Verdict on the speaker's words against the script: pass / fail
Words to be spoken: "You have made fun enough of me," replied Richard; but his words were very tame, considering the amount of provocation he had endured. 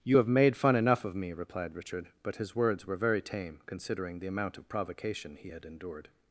pass